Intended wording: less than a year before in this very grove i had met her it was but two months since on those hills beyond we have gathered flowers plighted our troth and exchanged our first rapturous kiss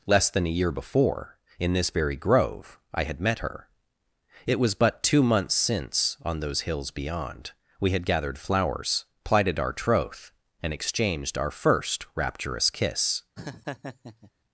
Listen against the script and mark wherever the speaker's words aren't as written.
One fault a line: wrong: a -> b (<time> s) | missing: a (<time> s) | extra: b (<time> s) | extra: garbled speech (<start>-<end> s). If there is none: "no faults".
wrong: have -> had (7.9 s)